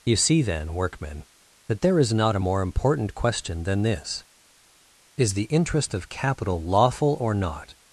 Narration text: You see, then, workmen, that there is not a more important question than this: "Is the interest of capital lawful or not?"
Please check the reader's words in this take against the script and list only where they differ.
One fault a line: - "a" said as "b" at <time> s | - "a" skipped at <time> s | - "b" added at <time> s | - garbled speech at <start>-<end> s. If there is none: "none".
none